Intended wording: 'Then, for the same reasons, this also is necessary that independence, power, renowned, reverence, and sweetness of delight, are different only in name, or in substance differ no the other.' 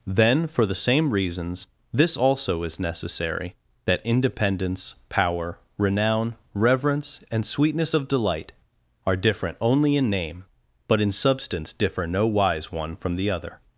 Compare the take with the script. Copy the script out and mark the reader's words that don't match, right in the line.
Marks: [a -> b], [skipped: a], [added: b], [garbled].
'Then, for the same reasons, this also is necessary that independence, power, [renowned, -> renown] reverence, and sweetness of delight, are different only in name, [or -> but] in substance differ no [added: wise one from] the other.'